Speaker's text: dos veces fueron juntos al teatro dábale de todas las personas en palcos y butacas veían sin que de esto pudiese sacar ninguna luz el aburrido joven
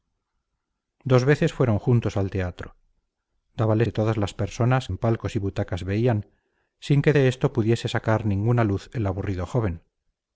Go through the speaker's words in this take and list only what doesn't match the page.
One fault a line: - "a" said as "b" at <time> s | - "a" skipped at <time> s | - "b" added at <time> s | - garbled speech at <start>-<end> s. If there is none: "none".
none